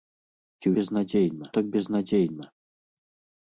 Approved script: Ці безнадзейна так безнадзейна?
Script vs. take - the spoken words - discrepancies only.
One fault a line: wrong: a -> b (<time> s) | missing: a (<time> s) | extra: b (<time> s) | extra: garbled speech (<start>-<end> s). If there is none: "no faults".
no faults